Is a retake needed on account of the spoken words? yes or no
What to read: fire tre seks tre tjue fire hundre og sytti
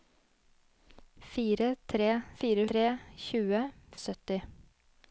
yes